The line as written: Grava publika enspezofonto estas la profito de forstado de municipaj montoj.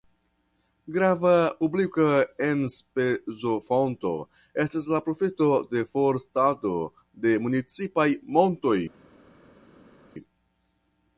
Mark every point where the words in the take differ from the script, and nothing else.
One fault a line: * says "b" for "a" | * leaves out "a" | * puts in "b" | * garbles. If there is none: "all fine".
all fine